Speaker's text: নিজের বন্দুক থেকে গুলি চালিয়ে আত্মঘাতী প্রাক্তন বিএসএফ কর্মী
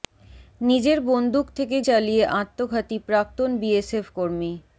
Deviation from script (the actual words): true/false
true